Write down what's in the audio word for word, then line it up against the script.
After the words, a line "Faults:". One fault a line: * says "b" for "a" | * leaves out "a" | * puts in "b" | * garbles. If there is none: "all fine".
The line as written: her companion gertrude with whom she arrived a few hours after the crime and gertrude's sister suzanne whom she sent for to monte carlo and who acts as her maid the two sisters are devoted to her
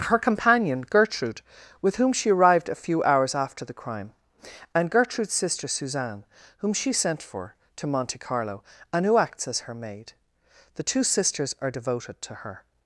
her companion gertrude with whom she arrived a few hours after the crime and gertrude's sister suzanne whom she sent for to monte carlo and who acts as her maid the two sisters are devoted to her
Faults:
all fine